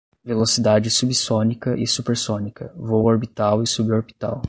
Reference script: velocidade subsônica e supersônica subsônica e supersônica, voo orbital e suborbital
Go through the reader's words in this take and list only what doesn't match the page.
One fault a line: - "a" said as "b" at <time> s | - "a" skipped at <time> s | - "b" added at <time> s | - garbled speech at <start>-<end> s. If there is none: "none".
- "subsônica e supersônica" skipped at 2.7 s